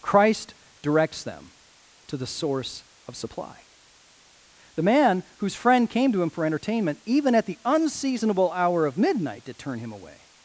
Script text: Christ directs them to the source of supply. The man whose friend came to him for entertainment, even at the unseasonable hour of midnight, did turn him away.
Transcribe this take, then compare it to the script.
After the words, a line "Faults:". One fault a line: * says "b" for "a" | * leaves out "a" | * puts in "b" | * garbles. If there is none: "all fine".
Christ directs them to the source of supply. The man whose friend came to him for entertainment, even at the unseasonable hour of midnight, did turn him away.
Faults:
all fine